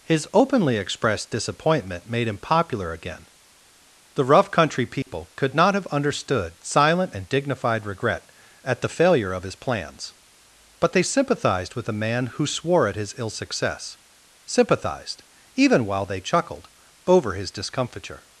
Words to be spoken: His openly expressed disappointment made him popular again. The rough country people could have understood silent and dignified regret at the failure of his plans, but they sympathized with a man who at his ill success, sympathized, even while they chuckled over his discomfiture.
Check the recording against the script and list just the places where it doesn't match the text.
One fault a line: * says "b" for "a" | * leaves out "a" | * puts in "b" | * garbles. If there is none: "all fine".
* puts in "not"
* puts in "swore"